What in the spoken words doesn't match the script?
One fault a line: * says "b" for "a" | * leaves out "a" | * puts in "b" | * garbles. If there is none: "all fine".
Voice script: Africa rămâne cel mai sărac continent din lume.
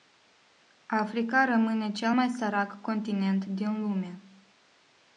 all fine